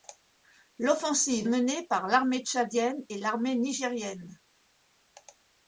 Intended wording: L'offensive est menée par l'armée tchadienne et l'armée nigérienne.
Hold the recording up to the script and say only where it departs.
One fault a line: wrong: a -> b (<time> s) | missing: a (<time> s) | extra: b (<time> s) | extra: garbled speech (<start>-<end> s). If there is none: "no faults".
missing: est (1.5 s)